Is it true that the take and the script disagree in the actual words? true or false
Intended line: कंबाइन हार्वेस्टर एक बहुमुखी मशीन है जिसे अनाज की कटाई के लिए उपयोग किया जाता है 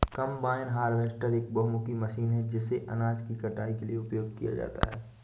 false